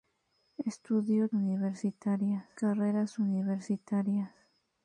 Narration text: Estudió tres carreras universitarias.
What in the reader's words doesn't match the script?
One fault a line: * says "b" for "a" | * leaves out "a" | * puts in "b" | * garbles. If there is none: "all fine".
* says "universitarias" for "tres"